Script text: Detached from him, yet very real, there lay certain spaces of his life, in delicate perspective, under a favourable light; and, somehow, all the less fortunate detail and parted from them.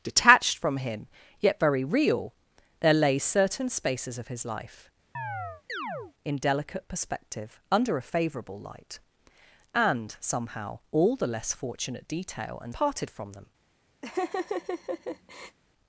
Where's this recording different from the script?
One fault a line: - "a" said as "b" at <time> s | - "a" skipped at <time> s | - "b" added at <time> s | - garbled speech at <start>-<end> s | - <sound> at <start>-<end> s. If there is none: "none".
- chirp at 5.1-6.1 s
- laugh at 14.0-15.6 s